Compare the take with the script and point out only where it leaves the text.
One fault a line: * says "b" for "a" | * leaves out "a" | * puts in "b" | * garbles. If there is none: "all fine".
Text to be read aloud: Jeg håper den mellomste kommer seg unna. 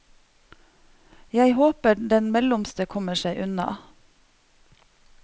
all fine